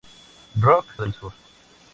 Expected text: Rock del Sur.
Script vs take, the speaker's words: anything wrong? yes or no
no